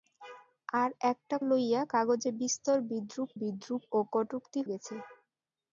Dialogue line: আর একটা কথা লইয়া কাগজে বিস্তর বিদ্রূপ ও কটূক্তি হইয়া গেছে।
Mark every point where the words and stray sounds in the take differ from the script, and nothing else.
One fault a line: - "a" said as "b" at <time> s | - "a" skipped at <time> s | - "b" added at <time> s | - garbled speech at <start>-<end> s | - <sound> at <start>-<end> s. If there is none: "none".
- "কথা" skipped at 1.4 s
- "বিদ্রূপ" added at 3.4 s
- "হইয়া" skipped at 4.6 s